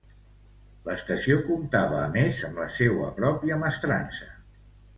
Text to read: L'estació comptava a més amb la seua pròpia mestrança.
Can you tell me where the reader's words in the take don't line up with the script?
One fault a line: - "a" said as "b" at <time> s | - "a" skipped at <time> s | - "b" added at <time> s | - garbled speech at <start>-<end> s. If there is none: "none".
none